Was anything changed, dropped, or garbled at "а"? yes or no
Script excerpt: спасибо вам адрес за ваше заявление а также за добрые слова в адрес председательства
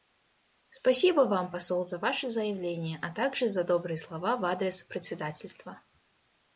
no